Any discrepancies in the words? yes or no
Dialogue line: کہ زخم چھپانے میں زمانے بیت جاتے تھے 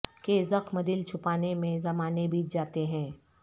yes